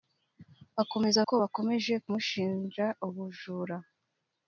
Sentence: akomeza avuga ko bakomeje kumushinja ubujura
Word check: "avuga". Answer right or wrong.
wrong